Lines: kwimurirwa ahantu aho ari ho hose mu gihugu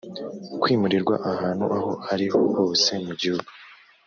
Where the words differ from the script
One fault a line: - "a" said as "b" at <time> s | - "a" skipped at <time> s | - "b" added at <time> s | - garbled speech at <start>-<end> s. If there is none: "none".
none